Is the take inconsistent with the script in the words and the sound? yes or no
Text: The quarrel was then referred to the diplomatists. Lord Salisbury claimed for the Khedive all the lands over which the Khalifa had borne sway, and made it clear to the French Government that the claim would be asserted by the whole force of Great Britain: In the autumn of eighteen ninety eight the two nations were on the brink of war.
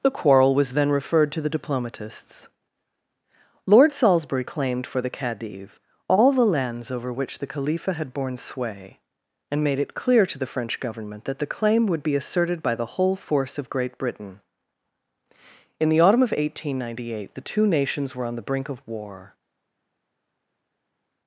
no